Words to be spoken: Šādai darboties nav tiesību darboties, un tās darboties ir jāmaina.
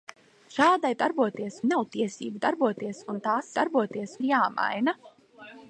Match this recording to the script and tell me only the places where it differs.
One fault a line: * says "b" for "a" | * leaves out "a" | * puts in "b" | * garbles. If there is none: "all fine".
all fine